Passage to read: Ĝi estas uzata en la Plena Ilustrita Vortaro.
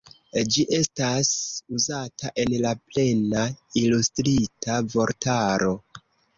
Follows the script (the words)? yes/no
yes